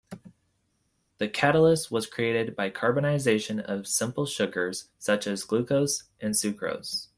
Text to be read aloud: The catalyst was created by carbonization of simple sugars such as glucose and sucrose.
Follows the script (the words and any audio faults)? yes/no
yes